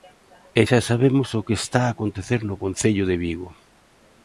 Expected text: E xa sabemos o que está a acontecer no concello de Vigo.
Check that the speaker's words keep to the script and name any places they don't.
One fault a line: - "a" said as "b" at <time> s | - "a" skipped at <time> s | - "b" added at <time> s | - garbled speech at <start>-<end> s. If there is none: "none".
none